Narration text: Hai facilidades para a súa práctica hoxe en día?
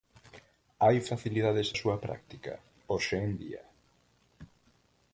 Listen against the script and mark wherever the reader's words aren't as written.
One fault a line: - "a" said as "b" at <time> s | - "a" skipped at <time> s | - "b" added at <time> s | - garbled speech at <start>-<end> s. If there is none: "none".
- "para" skipped at 1.7 s